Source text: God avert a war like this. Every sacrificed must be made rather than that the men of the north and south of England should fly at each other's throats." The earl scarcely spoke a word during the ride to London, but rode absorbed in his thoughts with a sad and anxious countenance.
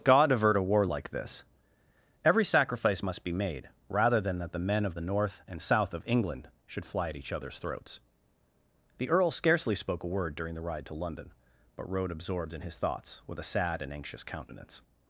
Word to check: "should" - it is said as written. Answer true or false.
true